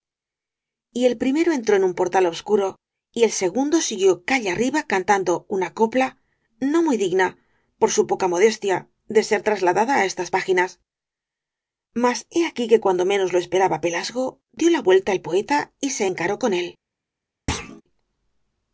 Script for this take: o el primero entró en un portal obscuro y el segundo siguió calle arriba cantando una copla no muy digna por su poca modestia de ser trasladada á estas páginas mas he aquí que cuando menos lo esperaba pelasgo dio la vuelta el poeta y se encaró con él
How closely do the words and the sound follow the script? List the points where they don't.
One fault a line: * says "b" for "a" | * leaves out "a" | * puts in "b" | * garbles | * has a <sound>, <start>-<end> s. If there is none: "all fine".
* says "y" for "o"
* has a thud, 17.5-17.8 s